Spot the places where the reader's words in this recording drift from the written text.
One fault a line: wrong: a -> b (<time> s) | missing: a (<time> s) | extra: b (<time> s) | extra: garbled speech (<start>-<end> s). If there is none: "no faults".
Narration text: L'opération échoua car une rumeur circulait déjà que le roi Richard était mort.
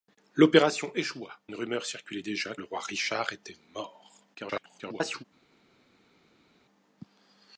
missing: car (1.4 s)
missing: que (2.5 s)
extra: garbled speech (4.3-5.2 s)